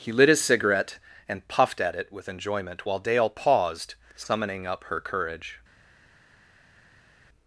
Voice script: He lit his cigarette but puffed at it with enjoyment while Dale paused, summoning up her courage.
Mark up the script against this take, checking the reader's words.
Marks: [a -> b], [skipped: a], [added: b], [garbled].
He lit his cigarette [but -> and] puffed at it with enjoyment while Dale paused, summoning up her courage.